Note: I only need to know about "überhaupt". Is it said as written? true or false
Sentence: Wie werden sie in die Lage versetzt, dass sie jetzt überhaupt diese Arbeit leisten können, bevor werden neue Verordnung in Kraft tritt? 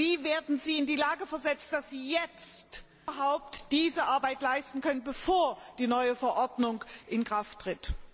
true